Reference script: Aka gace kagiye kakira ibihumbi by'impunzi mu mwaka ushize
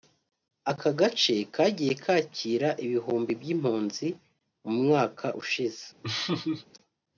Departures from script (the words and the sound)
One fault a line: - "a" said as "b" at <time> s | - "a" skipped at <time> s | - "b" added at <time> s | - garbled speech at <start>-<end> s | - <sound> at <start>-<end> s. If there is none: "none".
- laugh at 6.0-6.7 s